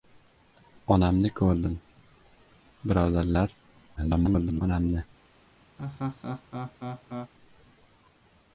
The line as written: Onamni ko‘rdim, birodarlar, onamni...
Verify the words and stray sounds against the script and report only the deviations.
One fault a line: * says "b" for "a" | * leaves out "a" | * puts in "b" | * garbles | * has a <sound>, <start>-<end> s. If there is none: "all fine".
* garbles
* has a laugh, 5.8-7.3 s